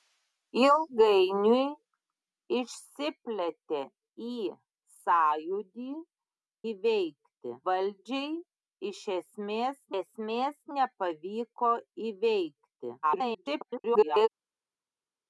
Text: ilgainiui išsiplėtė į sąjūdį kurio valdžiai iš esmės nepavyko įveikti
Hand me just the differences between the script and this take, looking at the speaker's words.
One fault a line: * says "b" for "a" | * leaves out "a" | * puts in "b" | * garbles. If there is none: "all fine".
* says "įveikti" for "kurio"
* puts in "esmės"
* garbles